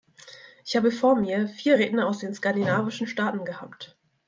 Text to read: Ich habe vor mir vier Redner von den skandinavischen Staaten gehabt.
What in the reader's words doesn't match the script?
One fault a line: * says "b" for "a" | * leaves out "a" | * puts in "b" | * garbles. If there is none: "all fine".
* says "aus" for "von"